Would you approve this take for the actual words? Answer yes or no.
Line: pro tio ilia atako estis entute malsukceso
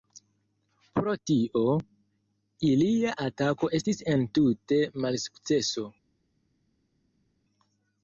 yes